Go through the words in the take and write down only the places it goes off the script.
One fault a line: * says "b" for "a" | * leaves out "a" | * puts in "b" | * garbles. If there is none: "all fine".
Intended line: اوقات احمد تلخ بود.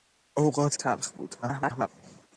* leaves out "احمد"
* garbles